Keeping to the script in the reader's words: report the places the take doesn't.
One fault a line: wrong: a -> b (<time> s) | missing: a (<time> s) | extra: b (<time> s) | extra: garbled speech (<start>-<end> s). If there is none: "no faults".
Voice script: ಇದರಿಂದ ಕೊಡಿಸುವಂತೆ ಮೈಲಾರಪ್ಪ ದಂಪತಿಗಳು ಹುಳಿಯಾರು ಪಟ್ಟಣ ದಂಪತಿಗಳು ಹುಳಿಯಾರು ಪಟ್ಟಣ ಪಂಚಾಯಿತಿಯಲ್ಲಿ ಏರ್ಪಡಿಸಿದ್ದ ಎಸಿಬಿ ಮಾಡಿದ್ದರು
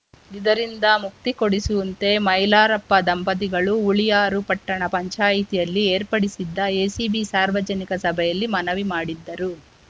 extra: ಮುಕ್ತಿ (1.0 s)
wrong: ದಂಪತಿಗಳು ಹುಳಿಯಾರು ಪಟ್ಟಣ ಪಂಚಾಯಿತಿಯಲ್ಲಿ ಏರ್ಪಡಿಸಿದ್ದ ಎಸಿಬಿ -> ಪಂಚಾಯಿತಿಯಲ್ಲಿ ಏರ್ಪಡಿಸಿದ್ದ ಎಸಿಬಿ ಸಾರ್ವಜನಿಕ ಸಭೆಯಲ್ಲಿ ಮನವಿ (4.9 s)